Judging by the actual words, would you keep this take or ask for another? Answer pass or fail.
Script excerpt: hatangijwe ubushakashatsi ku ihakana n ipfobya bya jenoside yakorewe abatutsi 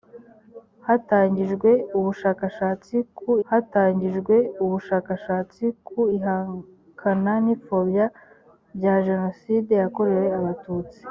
fail